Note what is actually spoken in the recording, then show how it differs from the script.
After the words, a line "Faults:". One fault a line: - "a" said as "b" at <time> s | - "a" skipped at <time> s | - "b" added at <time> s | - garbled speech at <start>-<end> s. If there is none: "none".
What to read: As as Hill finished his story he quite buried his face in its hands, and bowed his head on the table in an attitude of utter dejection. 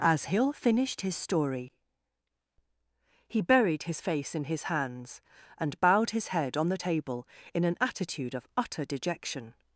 As Hill finished his story he buried his face in his hands, and bowed his head on the table in an attitude of utter dejection.
Faults:
- "as" skipped at 0.2 s
- "quite" skipped at 3.4 s
- "its" said as "his" at 4.4 s